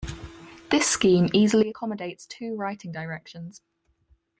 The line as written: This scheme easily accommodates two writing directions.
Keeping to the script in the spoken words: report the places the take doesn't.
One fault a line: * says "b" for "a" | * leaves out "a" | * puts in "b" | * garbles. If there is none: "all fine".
all fine